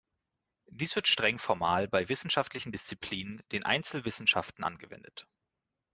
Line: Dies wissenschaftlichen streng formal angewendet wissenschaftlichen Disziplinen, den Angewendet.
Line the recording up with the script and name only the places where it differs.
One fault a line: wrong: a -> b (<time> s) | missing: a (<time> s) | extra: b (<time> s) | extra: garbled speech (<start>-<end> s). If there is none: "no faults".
wrong: wissenschaftlichen -> wird (0.9 s)
wrong: angewendet -> bei (1.9 s)
extra: Einzelwissenschaften (3.7 s)